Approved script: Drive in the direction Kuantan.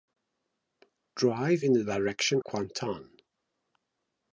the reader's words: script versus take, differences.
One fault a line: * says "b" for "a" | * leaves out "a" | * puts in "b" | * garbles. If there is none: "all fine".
all fine